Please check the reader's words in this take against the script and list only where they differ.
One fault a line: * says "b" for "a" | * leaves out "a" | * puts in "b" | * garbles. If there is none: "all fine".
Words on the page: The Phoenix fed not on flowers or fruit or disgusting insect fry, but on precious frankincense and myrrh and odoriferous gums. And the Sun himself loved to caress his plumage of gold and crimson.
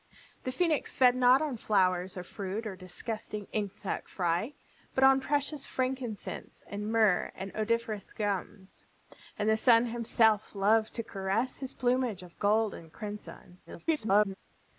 * garbles